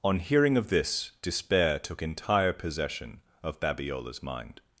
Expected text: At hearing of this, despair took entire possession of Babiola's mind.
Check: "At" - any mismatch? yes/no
yes